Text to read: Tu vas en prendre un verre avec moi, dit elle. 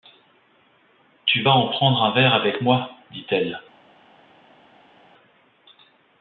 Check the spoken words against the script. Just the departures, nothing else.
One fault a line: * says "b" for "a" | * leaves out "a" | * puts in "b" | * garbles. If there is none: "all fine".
all fine